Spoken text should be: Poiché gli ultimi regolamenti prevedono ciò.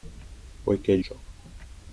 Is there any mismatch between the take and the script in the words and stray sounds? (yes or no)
yes